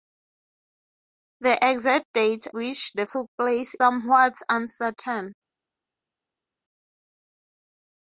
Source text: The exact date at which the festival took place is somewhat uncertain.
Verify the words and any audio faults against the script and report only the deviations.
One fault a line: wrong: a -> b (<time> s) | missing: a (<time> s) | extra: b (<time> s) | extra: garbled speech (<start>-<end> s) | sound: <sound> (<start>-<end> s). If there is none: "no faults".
missing: at (2.5 s)
missing: festival (3.1 s)
missing: is (3.7 s)